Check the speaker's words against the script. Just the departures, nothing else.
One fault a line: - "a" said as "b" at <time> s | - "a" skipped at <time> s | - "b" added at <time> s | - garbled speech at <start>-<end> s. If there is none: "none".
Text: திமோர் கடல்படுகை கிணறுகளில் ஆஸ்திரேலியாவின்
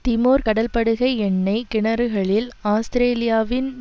- "எண்ணெய்" added at 1.2 s